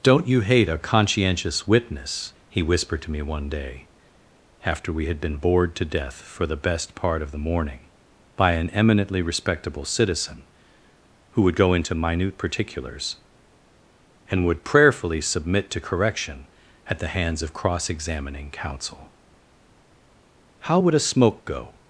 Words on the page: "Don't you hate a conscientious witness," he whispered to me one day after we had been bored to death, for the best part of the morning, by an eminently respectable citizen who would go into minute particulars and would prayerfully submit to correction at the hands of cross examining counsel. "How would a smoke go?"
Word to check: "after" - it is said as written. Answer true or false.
true